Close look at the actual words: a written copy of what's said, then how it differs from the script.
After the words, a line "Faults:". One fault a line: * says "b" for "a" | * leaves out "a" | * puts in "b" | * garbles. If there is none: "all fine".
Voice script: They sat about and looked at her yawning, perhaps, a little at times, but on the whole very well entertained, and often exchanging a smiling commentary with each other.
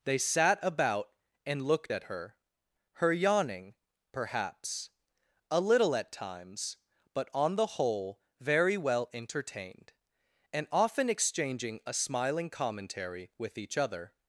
They sat about and looked at her her yawning, perhaps, a little at times, but on the whole very well entertained, and often exchanging a smiling commentary with each other.
Faults:
* puts in "her"